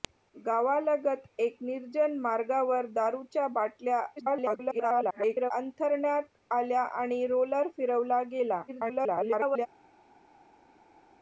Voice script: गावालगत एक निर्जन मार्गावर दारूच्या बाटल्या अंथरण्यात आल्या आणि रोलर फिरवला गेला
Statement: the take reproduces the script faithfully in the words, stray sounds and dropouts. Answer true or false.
false